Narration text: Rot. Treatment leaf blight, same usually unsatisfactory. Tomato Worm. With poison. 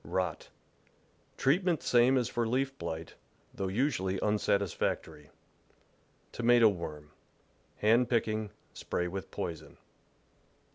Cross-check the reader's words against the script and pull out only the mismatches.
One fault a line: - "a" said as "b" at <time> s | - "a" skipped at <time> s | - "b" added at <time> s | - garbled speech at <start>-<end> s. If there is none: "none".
- "same as for" added at 1.8 s
- "same" said as "though" at 3.5 s
- "Hand picking spray" added at 7.8 s